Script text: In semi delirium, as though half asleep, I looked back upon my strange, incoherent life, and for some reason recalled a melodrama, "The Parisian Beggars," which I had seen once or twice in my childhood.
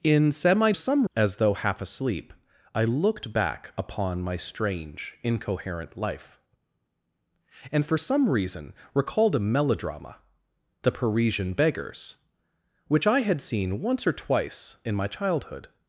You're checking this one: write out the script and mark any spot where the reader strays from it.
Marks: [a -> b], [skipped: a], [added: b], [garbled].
In semi [delirium, -> some] as though half asleep, I looked back upon my strange, incoherent life, and for some reason recalled a melodrama, "The Parisian Beggars," which I had seen once or twice in my childhood.